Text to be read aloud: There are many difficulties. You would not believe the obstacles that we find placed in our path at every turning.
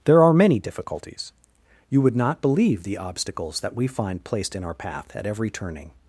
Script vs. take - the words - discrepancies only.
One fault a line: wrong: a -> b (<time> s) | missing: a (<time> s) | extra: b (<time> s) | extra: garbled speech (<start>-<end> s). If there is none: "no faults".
no faults